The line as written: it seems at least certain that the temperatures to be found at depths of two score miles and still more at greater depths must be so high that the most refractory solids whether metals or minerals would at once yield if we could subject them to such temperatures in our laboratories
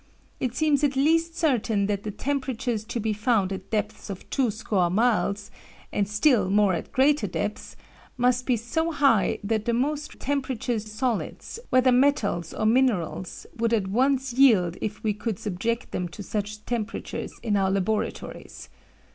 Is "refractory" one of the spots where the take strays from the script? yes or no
yes